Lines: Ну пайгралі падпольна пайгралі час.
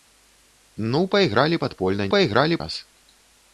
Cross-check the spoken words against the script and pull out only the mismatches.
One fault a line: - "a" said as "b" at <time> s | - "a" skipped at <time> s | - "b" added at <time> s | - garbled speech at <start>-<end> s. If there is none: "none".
none